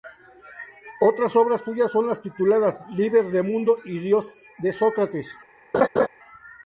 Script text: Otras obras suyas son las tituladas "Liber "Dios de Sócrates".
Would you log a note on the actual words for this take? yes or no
yes